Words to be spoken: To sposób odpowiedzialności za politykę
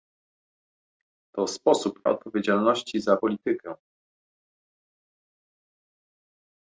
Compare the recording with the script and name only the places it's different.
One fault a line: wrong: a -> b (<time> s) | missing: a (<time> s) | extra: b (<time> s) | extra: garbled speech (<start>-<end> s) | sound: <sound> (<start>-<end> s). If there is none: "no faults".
no faults